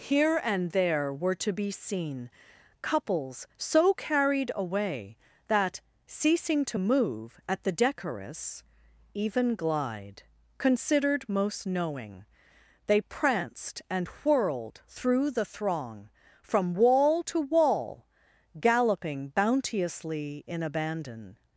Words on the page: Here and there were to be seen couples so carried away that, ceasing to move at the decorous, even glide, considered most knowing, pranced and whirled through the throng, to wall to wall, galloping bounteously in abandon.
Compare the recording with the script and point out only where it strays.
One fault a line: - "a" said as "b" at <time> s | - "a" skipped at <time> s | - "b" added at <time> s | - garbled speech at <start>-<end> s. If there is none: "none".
- "they" added at 12.9 s
- "to" said as "from" at 16.4 s